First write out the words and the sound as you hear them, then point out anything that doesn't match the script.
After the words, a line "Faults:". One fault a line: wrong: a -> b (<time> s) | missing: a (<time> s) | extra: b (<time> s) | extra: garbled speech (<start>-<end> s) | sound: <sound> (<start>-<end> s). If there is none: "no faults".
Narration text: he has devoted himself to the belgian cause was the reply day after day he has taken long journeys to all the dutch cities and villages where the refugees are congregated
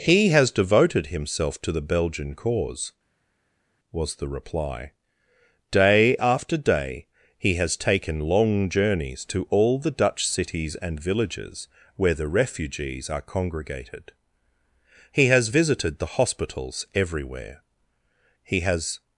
he has devoted himself to the belgian cause was the reply day after day he has taken long journeys to all the dutch cities and villages where the refugees are congregated he has visited the hospitals everywhere he has
Faults:
extra: he has visited the hospitals everywhere he has (15.1 s)